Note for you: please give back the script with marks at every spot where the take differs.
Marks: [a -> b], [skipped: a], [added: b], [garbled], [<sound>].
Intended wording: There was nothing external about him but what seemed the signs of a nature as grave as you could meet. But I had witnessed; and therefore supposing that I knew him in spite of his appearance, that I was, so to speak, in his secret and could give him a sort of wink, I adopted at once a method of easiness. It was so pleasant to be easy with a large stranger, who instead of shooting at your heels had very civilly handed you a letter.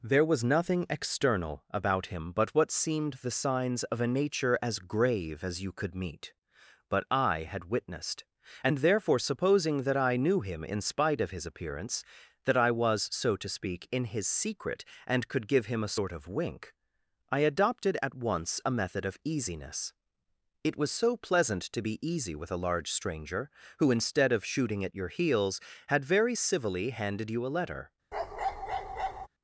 There was nothing external about him but what seemed the signs of a nature as grave as you could meet. But I had witnessed; and therefore supposing that I knew him in spite of his appearance, that I was, so to speak, in his secret and could give him a sort of wink, I adopted at once a method of easiness. It was so pleasant to be easy with a large stranger, who instead of shooting at your heels had very civilly handed you a letter. [bark]